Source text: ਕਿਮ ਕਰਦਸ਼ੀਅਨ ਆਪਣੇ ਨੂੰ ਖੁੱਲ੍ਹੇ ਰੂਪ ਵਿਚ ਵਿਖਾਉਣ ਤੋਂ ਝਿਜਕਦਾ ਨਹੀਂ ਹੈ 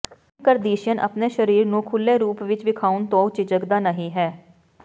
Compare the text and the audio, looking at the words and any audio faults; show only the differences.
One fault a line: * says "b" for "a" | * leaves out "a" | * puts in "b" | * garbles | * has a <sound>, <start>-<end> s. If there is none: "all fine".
* puts in "ਸਰੀਰ"